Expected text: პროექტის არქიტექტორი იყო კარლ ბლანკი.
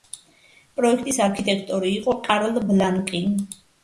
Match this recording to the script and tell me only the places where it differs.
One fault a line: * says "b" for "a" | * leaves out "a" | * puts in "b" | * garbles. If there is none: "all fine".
all fine